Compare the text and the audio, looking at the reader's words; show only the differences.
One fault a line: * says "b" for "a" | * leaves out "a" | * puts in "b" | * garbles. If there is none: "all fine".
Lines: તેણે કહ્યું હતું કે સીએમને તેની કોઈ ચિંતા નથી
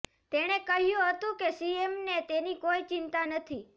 all fine